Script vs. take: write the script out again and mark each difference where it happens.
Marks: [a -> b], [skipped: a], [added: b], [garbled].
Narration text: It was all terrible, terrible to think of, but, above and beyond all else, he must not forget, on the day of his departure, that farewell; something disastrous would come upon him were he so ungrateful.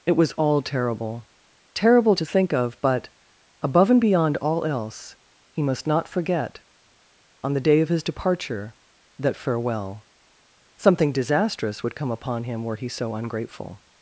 It was all terrible, terrible to think of, but, above and beyond all else, he must not forget, on the day of his departure, that farewell; something disastrous would come upon him were he so ungrateful.